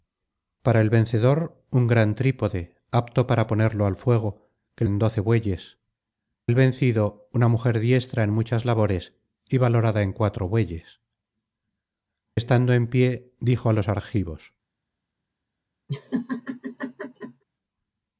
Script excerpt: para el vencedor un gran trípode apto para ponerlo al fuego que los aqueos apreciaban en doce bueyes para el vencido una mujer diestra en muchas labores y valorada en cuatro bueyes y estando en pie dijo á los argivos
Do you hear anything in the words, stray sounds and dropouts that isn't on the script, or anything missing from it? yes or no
yes